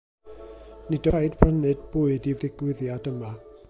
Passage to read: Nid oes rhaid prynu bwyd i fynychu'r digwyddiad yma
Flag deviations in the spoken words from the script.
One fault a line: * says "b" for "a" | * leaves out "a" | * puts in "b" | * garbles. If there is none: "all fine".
* leaves out "oes"
* leaves out "fynychu'r"